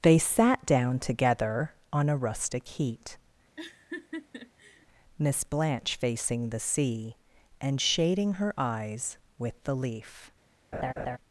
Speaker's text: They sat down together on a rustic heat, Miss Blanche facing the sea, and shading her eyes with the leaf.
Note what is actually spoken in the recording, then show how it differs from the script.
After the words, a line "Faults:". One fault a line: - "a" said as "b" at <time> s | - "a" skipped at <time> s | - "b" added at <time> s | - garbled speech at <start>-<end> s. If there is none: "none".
They sat down together on a rustic heat, Miss Blanche facing the sea, and shading her eyes with the leaf.
Faults:
none